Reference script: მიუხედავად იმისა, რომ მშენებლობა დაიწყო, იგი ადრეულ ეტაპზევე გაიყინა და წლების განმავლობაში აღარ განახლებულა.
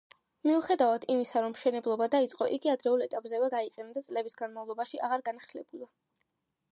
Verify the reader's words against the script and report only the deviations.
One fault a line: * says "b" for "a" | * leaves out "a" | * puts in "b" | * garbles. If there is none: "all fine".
all fine